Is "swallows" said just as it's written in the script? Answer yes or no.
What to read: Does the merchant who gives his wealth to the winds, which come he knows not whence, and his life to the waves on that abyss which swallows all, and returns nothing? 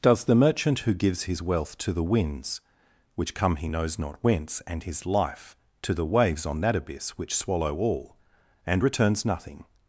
no